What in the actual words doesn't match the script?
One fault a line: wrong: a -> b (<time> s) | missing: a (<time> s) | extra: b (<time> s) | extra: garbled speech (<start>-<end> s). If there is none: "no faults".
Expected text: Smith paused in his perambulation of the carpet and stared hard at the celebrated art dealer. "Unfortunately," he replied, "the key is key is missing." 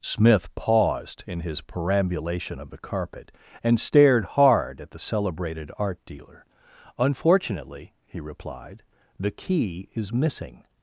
missing: key is (10.1 s)